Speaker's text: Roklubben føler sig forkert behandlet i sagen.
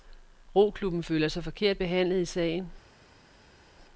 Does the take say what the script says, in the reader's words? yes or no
yes